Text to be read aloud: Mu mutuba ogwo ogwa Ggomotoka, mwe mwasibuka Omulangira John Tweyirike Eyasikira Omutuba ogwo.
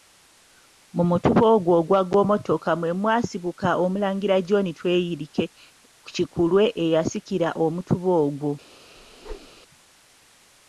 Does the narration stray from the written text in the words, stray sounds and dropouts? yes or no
yes